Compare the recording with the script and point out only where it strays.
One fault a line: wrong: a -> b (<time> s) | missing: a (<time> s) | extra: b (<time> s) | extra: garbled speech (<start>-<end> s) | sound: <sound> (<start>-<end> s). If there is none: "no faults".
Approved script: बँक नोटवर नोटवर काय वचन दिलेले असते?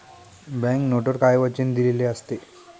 missing: नोटवर (1.2 s)